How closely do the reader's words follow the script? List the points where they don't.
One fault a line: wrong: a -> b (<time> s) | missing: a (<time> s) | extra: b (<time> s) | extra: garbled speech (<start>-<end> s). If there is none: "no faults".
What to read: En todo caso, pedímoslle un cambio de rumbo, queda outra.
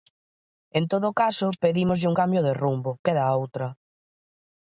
no faults